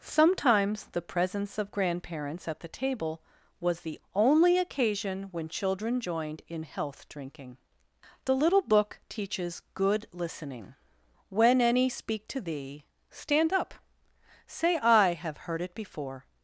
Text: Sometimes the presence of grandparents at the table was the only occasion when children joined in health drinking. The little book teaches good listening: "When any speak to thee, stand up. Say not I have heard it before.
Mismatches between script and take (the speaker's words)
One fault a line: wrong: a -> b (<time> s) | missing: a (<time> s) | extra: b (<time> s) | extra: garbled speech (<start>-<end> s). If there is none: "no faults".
missing: not (14.8 s)